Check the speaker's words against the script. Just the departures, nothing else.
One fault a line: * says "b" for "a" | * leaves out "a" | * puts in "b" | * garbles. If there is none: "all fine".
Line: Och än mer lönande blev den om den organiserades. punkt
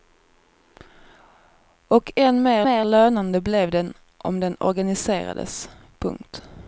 * puts in "mer"